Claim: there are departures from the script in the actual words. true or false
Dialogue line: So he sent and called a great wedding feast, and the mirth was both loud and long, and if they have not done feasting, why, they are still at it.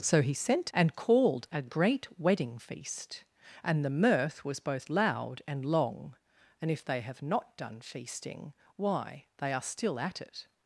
false